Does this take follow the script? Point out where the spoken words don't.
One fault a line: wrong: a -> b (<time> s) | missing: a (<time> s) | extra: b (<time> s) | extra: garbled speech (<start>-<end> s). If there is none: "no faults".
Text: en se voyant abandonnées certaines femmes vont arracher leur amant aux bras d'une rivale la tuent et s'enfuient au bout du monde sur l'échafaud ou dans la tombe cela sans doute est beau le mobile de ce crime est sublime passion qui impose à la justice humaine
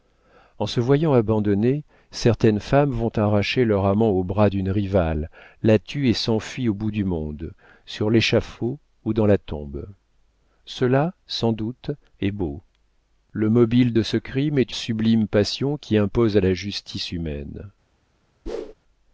no faults